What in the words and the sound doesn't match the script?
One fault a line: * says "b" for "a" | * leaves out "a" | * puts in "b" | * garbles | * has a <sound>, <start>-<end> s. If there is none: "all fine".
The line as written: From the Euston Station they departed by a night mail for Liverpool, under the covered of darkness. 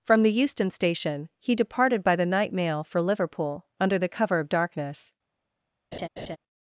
* says "he" for "they"
* says "the" for "a"
* says "cover" for "covered"
* has a laugh, 5.9-6.4 s